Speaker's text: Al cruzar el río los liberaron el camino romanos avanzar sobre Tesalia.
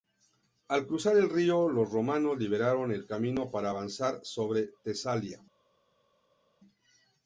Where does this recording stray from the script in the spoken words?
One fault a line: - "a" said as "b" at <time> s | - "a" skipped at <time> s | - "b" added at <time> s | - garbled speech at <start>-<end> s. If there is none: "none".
- "romanos" added at 1.9 s
- "romanos" said as "para" at 3.5 s